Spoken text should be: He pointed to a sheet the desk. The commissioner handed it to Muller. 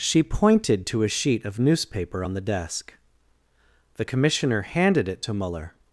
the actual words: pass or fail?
fail